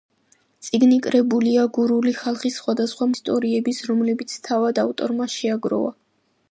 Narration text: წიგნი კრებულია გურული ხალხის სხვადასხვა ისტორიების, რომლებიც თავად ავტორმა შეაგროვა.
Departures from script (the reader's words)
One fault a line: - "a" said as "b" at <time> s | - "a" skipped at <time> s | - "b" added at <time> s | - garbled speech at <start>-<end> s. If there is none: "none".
none